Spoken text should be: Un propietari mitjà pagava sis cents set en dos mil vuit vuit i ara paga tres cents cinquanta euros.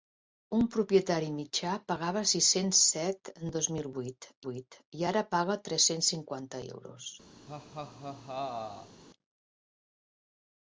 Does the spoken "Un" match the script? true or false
true